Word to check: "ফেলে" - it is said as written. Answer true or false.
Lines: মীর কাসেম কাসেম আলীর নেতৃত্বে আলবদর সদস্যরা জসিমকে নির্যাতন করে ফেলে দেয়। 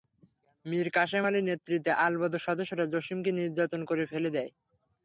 true